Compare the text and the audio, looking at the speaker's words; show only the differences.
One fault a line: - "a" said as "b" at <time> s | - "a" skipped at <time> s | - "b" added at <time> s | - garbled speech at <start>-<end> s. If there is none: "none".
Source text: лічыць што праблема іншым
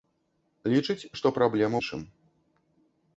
none